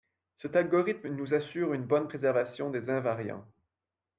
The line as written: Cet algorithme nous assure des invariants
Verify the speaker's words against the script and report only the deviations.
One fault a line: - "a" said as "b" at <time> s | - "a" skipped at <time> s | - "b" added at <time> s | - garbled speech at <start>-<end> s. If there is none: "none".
- "une bonne préservation" added at 1.8 s